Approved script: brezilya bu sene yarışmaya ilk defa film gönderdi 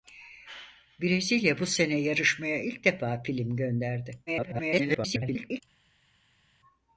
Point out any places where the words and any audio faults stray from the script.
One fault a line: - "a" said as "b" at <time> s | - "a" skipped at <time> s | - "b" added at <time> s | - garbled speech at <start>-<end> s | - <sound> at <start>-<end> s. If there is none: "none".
- garbled speech at 4.3-5.6 s